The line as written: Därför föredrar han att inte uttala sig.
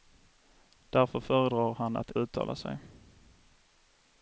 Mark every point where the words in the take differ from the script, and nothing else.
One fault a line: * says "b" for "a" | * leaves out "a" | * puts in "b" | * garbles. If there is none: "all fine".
* leaves out "inte"